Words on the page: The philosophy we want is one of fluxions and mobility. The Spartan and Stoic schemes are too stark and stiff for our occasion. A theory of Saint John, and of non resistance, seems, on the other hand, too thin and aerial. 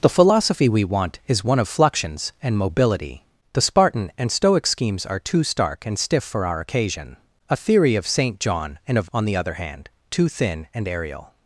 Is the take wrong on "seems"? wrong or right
wrong